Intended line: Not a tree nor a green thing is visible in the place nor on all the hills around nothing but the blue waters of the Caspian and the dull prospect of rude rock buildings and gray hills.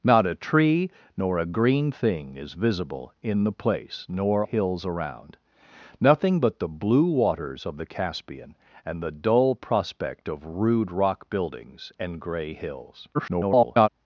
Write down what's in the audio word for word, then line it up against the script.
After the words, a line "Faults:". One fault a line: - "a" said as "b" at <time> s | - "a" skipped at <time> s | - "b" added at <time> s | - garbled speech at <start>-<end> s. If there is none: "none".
Not a tree nor a green thing is visible in the place nor hills around nothing but the blue waters of the Caspian and the dull prospect of rude rock buildings and gray hills. [garbled]
Faults:
- "on all the" skipped at 4.4 s
- garbled speech at 13.1-13.9 s